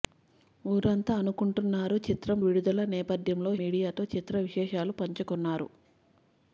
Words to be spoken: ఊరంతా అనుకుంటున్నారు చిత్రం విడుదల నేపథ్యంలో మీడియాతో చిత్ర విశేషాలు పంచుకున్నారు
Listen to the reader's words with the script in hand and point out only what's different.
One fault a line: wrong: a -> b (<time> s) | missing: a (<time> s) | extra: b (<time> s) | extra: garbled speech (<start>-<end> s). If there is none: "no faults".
no faults